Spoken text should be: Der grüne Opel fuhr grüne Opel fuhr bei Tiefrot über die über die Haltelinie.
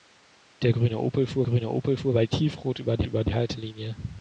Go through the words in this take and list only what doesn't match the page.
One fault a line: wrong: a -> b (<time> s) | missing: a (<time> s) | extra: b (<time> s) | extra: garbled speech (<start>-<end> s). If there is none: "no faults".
no faults